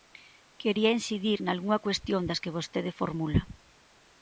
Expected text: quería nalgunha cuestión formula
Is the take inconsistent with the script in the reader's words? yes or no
yes